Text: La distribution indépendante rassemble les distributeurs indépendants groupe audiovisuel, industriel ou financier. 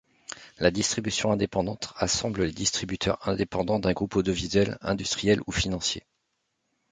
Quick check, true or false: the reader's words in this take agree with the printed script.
false